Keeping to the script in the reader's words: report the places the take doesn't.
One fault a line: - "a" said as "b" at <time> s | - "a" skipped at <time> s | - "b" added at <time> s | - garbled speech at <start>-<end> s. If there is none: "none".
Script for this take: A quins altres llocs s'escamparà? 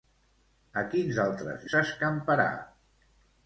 - "llocs" skipped at 1.7 s